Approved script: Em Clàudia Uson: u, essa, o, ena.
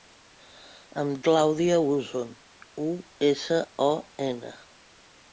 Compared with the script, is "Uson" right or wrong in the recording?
right